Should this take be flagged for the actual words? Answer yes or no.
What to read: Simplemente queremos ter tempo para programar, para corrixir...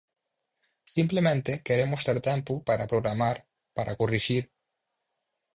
no